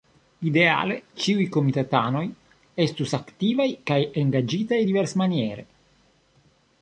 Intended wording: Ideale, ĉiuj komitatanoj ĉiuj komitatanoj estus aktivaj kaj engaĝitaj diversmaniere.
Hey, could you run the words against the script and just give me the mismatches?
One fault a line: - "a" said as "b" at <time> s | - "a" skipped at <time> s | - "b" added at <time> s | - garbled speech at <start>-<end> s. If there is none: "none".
- "ĉiuj komitatanoj" skipped at 2.2 s